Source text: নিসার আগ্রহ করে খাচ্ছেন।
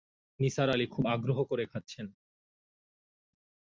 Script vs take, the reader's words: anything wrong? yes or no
yes